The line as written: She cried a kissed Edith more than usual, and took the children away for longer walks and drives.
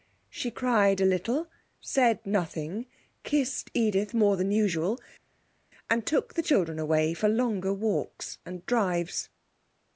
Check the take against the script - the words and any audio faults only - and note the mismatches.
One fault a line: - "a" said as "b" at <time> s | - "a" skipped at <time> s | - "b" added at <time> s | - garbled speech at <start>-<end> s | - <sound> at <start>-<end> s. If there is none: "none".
- "little said nothing" added at 1.1 s